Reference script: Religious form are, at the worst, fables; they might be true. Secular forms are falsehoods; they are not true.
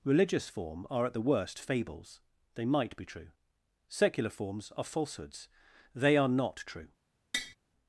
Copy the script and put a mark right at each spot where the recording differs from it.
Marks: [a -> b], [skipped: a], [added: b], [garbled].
Religious form are, at the worst, fables; they might be true. Secular forms are falsehoods; they are not true.